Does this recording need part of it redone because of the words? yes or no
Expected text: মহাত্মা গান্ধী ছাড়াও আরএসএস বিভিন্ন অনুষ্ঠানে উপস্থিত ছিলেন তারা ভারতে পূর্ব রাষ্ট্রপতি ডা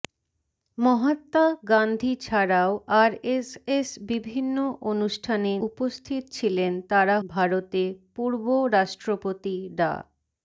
no